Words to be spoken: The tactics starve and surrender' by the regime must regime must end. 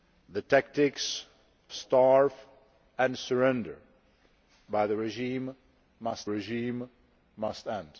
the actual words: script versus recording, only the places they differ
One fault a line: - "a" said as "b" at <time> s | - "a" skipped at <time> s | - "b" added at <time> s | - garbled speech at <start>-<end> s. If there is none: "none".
none